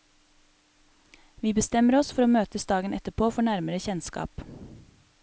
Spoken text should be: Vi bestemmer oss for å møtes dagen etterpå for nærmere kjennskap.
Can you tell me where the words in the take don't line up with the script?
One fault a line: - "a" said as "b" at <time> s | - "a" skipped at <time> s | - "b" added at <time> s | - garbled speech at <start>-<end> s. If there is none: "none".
none